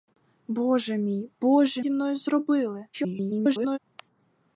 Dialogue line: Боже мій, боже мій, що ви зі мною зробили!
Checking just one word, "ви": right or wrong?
wrong